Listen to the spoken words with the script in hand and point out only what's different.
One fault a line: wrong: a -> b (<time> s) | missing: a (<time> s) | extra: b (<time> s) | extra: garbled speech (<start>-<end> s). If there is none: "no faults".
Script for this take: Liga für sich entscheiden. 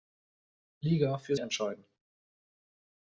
missing: sich (1.4 s)